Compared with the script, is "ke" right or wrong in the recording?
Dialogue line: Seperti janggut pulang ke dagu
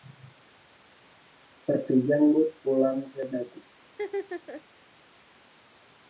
right